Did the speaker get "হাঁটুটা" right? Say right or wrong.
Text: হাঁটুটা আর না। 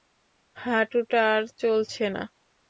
right